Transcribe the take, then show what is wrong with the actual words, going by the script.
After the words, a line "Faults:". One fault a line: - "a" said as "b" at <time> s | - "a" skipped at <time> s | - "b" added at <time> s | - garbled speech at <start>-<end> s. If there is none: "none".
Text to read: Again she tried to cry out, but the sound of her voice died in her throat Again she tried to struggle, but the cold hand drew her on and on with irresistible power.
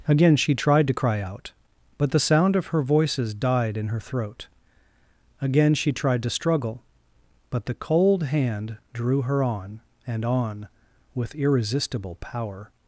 Again she tried to cry out, but the sound of her voices died in her throat Again she tried to struggle, but the cold hand drew her on and on with irresistible power.
Faults:
- "voice" said as "voices" at 2.8 s